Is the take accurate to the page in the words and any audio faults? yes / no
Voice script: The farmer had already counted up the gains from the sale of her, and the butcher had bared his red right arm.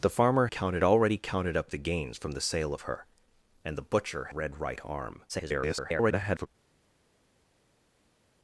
no